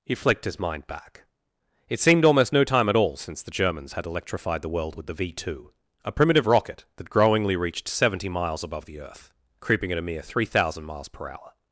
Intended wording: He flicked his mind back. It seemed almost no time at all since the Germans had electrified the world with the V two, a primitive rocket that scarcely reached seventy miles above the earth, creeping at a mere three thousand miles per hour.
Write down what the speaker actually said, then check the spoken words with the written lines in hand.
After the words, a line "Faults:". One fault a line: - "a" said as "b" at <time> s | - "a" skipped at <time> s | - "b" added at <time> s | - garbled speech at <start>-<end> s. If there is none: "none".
He flicked his mind back. It seemed almost no time at all since the Germans had electrified the world with the V two, a primitive rocket that growingly reached seventy miles above the earth, creeping at a mere three thousand miles per hour.
Faults:
- "scarcely" said as "growingly" at 7.1 s